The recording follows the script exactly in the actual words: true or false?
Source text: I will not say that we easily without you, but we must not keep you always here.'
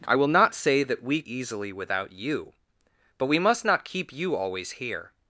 true